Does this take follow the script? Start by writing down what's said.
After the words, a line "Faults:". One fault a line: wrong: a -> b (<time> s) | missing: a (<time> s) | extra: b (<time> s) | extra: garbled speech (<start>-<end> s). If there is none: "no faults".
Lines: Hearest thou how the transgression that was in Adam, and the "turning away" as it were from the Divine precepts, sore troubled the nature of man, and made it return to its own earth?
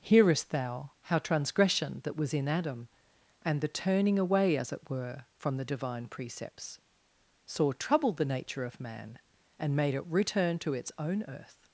Hearest thou how transgression that was in Adam, and the "turning away" as it were from the Divine precepts, sore troubled the nature of man, and made it return to its own earth?
Faults:
missing: the (1.2 s)